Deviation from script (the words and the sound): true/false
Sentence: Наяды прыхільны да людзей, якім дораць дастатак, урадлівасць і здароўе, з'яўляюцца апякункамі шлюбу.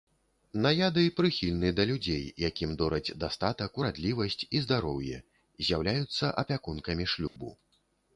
true